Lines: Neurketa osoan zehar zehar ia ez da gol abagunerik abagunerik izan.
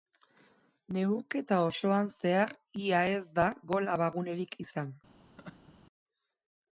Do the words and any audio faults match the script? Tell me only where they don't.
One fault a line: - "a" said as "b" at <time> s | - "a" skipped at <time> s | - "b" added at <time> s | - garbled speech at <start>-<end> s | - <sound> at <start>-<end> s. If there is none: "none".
- "zehar" skipped at 2.5 s
- "abagunerik" skipped at 4.6 s
- laugh at 5.4-5.7 s